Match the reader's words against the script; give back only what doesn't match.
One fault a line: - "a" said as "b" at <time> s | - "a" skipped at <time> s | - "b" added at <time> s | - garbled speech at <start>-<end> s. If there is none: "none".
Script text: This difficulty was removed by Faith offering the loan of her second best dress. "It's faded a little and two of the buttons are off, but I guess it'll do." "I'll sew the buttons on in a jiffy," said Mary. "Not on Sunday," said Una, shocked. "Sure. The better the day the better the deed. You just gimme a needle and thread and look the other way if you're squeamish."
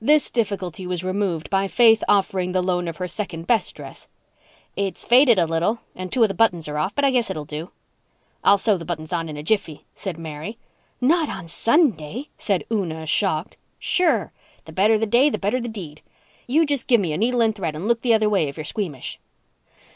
none